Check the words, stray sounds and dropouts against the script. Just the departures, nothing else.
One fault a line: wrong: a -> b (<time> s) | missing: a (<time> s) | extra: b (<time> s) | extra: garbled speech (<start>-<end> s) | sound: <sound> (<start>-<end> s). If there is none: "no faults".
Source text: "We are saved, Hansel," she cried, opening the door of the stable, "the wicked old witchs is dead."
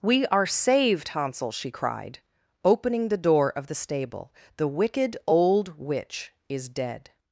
wrong: witchs -> witch (5.8 s)